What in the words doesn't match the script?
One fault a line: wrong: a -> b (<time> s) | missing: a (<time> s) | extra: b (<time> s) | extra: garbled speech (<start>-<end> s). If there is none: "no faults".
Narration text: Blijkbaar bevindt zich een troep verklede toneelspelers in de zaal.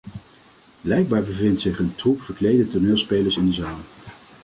no faults